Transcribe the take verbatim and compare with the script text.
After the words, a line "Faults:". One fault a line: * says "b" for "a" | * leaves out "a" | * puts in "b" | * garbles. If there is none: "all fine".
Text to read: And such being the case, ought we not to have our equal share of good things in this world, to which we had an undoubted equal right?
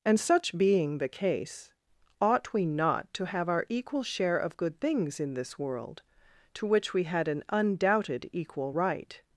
And such being the case, ought we not to have our equal share of good things in this world, to which we had an undoubted equal right?
Faults:
all fine